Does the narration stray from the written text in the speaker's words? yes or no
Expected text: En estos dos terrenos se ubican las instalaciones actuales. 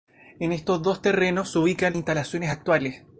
yes